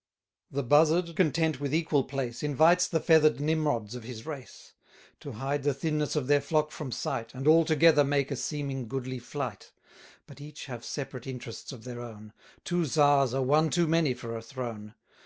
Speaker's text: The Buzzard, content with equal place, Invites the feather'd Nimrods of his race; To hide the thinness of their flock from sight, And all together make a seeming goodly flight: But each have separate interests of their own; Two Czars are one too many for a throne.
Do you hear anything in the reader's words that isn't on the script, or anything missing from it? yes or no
no